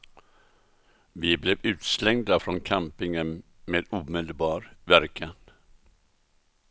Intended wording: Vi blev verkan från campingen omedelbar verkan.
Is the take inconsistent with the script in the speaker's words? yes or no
yes